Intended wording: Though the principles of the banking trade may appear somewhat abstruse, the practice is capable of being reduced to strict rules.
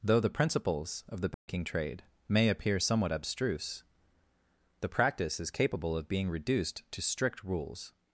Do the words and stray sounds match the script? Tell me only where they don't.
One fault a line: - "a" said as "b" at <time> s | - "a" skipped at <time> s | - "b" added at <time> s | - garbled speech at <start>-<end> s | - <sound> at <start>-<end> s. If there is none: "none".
- dropout at 1.3-1.5 s